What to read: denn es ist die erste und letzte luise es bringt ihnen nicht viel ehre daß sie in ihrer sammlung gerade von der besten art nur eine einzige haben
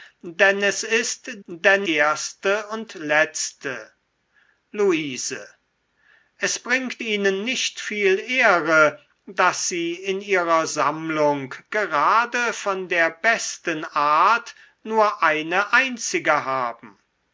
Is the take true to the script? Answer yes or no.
no